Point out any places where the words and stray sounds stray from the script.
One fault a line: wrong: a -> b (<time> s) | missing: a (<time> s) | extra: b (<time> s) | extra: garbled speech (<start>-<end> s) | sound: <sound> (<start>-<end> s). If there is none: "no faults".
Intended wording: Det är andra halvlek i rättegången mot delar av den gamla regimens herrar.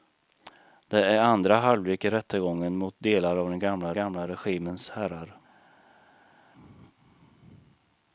extra: gamla (3.9 s)